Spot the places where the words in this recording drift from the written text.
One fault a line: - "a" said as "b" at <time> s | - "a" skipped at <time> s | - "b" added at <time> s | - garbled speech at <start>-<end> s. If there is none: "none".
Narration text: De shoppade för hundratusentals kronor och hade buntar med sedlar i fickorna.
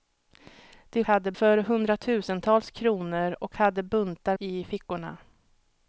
- "shoppade" said as "hade" at 1.1 s
- "med sedlar" skipped at 4.4 s